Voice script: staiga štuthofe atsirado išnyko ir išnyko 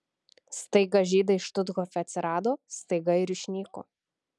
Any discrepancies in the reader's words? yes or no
yes